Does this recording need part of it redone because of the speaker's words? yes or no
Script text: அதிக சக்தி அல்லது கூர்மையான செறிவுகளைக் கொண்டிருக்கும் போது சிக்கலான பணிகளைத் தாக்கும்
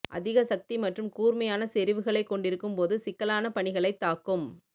yes